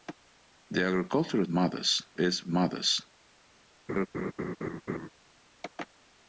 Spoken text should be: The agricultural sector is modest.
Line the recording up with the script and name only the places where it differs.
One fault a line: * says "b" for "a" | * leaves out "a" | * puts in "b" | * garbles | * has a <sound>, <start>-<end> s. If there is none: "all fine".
* says "modest" for "sector"
* has a laugh, 3.9-5.1 s